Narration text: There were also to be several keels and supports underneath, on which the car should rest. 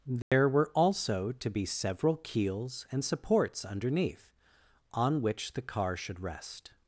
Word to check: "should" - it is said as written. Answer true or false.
true